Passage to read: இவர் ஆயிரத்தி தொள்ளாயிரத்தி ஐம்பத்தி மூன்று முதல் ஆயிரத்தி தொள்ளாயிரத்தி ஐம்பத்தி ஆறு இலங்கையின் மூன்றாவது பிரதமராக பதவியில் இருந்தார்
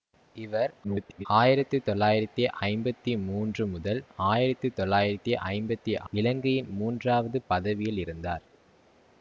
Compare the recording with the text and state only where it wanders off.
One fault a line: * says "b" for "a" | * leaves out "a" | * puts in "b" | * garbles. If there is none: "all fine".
* garbles
* leaves out "ஆறு"
* leaves out "பிரதமராக"